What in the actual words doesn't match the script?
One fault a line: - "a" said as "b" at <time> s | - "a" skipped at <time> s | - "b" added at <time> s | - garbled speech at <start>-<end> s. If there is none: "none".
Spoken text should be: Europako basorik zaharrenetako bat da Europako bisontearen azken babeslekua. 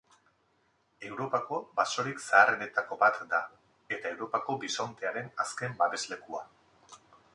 - "eta" added at 4.0 s